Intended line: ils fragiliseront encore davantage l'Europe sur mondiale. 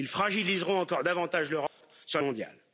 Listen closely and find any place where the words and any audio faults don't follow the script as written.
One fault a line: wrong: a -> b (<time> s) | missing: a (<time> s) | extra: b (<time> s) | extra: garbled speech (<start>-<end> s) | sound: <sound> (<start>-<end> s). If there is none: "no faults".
sound: dropout (1.7-1.8 s)